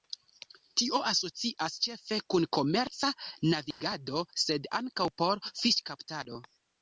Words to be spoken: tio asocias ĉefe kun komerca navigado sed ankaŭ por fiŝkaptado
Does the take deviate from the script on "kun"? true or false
false